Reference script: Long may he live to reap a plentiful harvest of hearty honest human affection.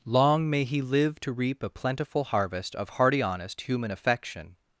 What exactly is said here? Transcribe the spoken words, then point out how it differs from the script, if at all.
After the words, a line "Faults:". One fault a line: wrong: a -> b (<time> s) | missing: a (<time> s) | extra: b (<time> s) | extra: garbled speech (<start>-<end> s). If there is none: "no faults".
Long may he live to reap a plentiful harvest of hearty honest human affection.
Faults:
no faults